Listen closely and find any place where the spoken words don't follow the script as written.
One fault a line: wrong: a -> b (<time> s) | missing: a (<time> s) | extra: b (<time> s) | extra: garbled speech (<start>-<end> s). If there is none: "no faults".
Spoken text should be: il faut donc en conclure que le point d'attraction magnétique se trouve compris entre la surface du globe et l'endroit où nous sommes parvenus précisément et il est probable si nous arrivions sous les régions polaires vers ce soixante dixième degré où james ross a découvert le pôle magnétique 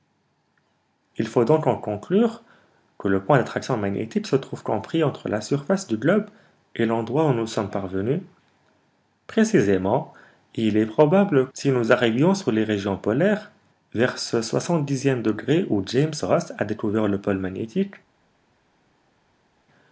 no faults